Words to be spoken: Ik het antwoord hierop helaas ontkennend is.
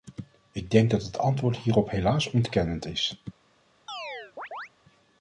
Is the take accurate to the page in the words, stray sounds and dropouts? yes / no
no